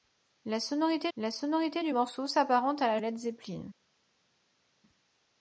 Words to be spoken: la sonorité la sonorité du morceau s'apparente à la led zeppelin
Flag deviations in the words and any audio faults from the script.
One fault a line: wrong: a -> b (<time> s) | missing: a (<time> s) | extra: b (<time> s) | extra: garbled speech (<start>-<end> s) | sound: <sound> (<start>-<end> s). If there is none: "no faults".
no faults